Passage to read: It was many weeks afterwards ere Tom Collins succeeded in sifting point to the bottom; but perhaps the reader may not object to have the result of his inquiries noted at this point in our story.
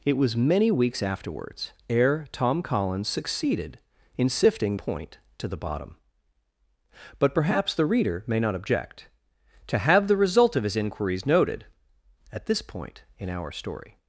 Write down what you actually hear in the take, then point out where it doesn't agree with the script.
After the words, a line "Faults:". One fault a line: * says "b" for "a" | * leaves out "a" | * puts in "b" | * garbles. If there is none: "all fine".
It was many weeks afterwards ere Tom Collins succeeded in sifting point to the bottom; but perhaps the reader may not object to have the result of his inquiries noted at this point in our story.
Faults:
all fine